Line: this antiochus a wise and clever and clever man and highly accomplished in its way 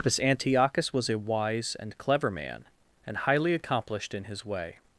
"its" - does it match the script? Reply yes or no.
no